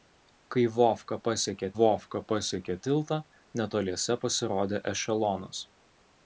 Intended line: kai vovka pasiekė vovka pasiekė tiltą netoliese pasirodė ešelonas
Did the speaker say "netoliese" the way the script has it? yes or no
yes